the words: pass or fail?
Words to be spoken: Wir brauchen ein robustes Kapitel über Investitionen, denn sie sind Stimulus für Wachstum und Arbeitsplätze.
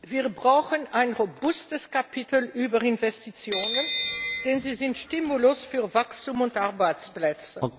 pass